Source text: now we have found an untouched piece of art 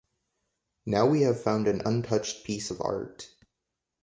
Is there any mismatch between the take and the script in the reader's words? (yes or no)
no